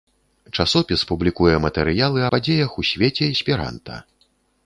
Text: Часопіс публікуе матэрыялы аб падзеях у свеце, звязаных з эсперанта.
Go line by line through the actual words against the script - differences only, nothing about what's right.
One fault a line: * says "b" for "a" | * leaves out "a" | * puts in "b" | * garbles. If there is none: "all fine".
* leaves out "аб"
* leaves out "звязаных з"